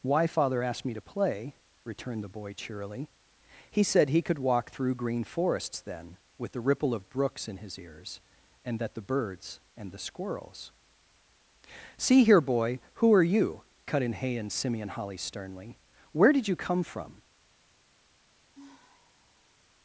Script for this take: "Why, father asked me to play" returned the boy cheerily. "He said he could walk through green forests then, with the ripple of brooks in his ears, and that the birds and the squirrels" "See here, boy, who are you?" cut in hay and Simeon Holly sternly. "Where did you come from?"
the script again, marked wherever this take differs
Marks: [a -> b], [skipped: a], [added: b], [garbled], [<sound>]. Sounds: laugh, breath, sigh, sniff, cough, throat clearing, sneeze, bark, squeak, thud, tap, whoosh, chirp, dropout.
"Why, father asked me to play" returned the boy cheerily. "He said he could walk through green forests then, with the ripple of brooks in his ears, and that the birds and the squirrels" "See here, boy, who are you?" cut in hay and Simeon Holly sternly. "Where did you come from?" [sigh]